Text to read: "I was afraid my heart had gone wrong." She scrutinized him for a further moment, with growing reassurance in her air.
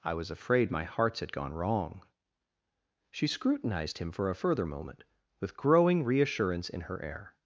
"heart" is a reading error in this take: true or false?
true